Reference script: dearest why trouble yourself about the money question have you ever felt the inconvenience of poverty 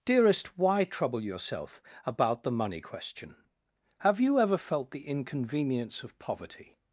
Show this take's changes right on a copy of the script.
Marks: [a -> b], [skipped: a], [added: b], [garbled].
dearest why trouble yourself about the money question have you ever felt the inconvenience of poverty